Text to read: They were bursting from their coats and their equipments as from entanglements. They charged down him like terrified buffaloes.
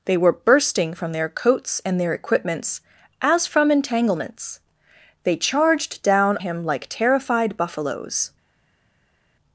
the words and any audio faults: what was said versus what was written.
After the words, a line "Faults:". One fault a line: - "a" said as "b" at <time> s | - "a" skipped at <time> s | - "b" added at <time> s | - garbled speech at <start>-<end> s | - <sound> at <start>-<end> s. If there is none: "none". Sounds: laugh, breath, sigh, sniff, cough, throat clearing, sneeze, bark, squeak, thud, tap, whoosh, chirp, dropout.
They were bursting from their coats and their equipments as from entanglements. They charged down him like terrified buffaloes.
Faults:
none